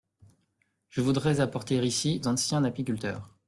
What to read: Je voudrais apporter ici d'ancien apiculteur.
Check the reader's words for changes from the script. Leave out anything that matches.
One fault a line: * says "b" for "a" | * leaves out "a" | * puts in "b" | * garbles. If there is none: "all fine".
all fine